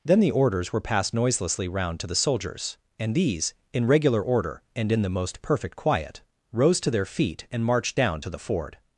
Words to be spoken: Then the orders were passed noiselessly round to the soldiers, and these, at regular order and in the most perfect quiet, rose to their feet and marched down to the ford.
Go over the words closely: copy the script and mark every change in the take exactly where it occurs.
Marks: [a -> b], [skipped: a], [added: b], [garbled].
Then the orders were passed noiselessly round to the soldiers, and these, [at -> in] regular order and in the most perfect quiet, rose to their feet and marched down to the ford.